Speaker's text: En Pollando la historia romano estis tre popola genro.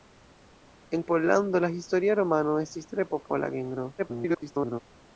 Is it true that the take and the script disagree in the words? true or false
true